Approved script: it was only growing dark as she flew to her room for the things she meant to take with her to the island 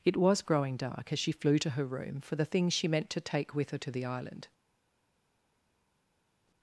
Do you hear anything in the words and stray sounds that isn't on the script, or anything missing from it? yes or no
yes